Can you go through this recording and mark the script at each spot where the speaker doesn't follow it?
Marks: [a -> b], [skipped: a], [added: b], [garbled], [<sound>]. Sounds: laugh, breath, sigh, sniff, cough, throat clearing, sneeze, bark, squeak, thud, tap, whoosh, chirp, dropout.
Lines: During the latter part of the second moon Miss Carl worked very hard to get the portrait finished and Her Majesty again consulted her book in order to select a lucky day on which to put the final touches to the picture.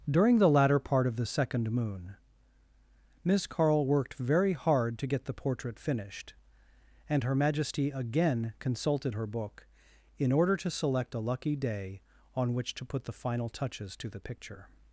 During the latter part of the second moon Miss Carl worked very hard to get the portrait finished and Her Majesty again consulted her book in order to select a lucky day on which to put the final touches to the picture.